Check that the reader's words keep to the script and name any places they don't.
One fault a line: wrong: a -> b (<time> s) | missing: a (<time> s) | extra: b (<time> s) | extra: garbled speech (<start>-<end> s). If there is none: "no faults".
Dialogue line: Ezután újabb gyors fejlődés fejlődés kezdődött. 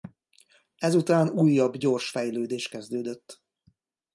missing: fejlődés (2.7 s)